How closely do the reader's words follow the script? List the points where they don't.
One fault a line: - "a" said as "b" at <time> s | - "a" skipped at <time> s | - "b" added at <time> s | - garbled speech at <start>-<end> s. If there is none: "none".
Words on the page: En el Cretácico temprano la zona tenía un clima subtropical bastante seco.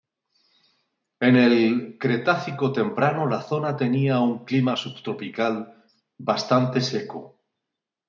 none